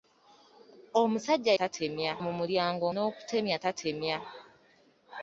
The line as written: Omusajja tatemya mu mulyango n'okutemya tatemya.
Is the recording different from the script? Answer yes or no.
no